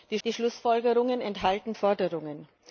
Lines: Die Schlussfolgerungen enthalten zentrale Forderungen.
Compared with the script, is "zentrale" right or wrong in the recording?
wrong